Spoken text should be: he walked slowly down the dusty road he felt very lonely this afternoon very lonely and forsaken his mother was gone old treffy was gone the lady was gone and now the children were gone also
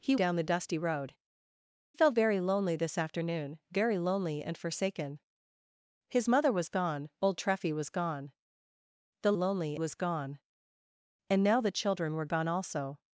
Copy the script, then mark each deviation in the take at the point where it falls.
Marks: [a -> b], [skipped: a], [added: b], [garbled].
he [skipped: walked slowly] down the dusty road [skipped: he] felt very lonely this afternoon very lonely and forsaken his mother was gone old treffy was gone the [lady -> lonely] was gone and now the children were gone also